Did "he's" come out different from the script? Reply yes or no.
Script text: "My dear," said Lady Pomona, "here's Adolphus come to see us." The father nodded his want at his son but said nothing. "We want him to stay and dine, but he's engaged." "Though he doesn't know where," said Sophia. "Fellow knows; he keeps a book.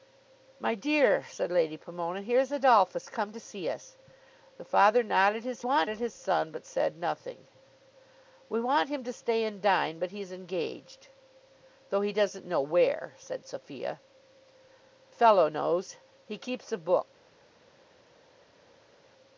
no